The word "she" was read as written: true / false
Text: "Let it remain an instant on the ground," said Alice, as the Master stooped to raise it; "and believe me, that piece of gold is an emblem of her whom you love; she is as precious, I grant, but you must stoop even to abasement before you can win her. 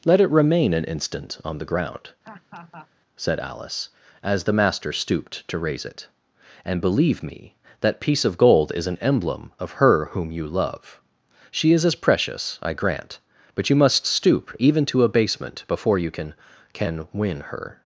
true